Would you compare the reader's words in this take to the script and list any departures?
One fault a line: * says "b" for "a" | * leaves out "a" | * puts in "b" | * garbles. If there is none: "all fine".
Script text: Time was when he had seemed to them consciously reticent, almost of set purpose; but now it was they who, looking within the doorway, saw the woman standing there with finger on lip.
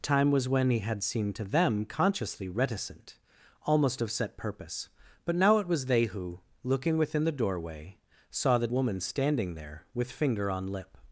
all fine